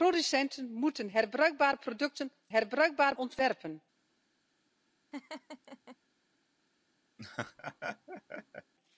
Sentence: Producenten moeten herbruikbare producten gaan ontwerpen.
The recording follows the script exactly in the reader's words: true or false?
false